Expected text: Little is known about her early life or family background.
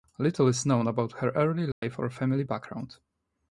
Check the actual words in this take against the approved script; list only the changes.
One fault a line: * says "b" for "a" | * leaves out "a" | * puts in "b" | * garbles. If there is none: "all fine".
all fine